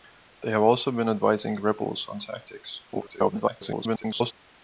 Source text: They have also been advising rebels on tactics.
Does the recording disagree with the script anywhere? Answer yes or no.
yes